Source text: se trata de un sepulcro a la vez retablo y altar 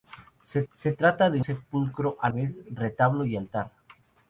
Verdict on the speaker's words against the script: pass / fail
fail